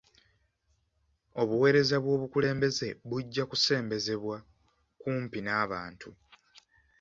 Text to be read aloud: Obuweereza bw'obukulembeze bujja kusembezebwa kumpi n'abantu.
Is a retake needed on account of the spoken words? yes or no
no